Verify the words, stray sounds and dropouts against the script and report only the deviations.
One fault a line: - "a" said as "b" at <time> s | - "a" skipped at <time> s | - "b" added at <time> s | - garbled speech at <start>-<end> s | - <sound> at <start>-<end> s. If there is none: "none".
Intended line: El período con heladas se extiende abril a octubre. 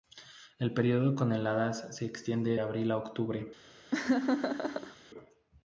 - laugh at 3.9-5.0 s